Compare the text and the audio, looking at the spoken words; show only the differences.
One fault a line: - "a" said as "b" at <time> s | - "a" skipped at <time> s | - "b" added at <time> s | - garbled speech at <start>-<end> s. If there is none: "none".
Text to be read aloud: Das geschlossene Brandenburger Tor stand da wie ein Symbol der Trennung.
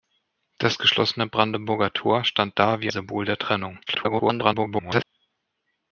- "ein" skipped at 2.9 s
- garbled speech at 3.9-5.0 s